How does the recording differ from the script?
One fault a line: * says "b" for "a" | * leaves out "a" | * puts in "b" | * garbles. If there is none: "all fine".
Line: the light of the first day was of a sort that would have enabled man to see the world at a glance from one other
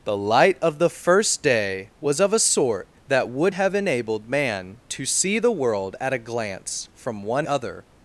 all fine